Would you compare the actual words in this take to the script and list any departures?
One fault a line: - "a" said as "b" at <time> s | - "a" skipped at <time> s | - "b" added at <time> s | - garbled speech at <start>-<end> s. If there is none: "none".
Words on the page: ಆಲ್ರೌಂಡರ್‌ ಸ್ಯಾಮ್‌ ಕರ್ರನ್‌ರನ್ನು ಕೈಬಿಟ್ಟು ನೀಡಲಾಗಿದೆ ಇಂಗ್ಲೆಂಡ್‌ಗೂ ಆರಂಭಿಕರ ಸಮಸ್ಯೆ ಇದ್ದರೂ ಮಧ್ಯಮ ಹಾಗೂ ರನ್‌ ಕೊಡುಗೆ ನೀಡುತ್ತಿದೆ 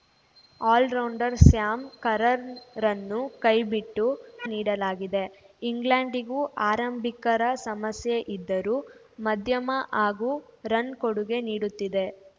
none